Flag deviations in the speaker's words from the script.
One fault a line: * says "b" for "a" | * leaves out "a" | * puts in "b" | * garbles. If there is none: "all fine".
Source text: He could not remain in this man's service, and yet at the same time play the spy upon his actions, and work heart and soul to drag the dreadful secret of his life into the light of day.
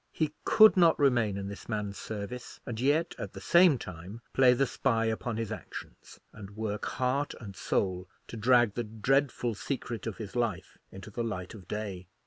all fine